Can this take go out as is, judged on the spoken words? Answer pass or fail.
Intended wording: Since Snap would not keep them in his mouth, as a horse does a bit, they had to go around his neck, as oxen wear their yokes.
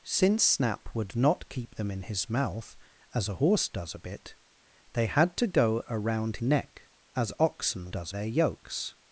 fail